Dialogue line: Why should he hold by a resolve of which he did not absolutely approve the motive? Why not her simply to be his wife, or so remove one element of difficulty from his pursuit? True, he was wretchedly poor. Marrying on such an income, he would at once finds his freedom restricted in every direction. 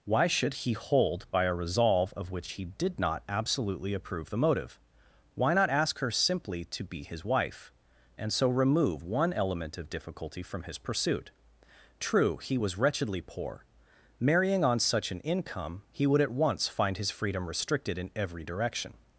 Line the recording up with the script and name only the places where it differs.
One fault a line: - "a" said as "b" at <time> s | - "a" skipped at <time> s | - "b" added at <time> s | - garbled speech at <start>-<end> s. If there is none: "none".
- "ask" added at 5.7 s
- "or" said as "and" at 8.2 s
- "finds" said as "find" at 16.7 s